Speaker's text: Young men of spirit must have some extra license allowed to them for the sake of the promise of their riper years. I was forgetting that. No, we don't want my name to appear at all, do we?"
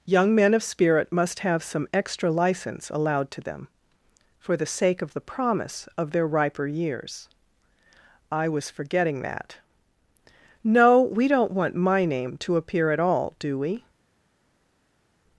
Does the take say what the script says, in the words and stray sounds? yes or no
yes